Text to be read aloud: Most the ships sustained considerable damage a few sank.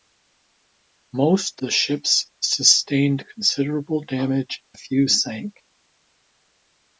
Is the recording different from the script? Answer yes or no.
no